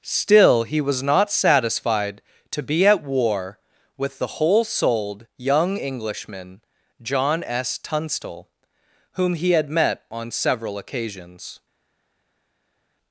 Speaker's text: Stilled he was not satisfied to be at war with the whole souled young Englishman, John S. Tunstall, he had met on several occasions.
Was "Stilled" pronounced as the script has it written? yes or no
no